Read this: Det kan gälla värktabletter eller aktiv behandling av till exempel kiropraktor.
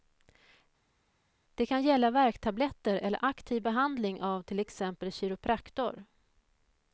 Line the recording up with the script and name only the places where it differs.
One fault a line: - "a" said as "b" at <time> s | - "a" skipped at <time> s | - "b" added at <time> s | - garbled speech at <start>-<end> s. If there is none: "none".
none